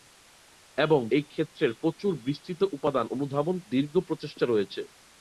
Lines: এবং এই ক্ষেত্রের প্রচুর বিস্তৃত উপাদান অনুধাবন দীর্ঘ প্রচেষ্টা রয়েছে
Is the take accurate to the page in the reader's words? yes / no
yes